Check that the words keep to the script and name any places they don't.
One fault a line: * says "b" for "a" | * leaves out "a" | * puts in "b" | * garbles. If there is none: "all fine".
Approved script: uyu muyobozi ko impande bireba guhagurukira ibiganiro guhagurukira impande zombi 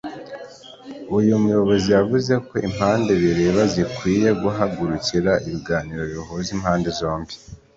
* puts in "yavuze"
* puts in "zikwiye"
* says "bihuza" for "guhagurukira"